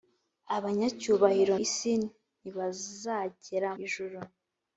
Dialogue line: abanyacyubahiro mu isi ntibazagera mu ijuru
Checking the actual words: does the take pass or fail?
fail